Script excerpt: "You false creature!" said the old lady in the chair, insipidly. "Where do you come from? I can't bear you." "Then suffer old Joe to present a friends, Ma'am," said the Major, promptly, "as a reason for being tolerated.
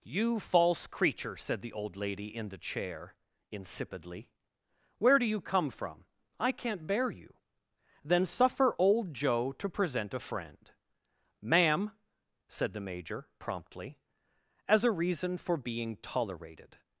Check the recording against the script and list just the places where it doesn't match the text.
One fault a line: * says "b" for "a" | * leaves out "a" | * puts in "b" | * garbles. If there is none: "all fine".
* says "friend" for "friends"